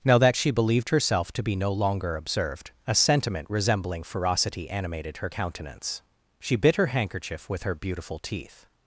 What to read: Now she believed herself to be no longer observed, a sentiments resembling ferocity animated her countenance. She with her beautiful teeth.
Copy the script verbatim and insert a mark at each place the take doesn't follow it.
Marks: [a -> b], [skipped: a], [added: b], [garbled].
Now [added: that] she believed herself to be no longer observed, a [sentiments -> sentiment] resembling ferocity animated her countenance. She [added: bit her handkerchief] with her beautiful teeth.